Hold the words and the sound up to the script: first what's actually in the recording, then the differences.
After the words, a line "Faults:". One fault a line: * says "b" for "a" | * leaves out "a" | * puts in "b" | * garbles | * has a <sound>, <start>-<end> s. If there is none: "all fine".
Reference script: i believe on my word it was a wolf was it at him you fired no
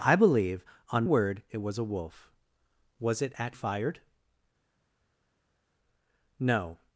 i believe on word it was a wolf was it at fired no
Faults:
* leaves out "my"
* leaves out "him you"